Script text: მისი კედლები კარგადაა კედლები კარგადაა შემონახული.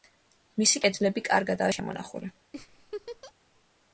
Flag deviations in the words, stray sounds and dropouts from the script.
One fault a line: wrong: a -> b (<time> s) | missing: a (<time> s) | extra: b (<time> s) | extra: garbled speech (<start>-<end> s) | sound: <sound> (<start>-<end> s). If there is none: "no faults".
missing: კედლები კარგადაა (1.8 s)
sound: laugh (2.5-3.3 s)